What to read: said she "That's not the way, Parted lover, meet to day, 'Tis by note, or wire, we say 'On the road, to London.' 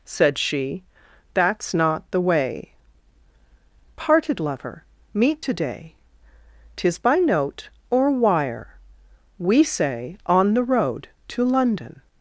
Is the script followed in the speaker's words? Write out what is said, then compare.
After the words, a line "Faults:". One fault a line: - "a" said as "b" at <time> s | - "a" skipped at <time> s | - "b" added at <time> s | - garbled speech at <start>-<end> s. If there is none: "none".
said she "That's not the way, Parted lover, meet to day, 'Tis by note, or wire, we say 'On the road, to London.'
Faults:
none